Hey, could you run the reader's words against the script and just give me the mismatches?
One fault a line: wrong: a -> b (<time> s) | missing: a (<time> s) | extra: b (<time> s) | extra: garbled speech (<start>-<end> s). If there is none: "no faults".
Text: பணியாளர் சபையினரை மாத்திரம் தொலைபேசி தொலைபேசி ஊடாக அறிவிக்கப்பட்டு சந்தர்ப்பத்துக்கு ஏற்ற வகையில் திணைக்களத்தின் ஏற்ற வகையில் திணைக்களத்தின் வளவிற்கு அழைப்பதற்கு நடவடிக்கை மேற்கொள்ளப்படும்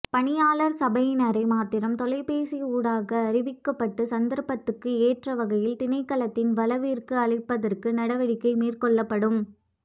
missing: தொலைபேசி (2.6 s)
missing: ஏற்ற வகையில் திணைக்களத்தின் (6.5 s)